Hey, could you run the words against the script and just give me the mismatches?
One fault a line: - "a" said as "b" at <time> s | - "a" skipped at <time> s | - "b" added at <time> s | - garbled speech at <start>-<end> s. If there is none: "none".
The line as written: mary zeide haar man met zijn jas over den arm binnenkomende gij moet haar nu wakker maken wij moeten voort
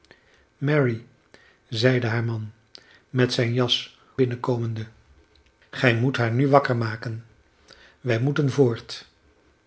- "over den arm" skipped at 4.0 s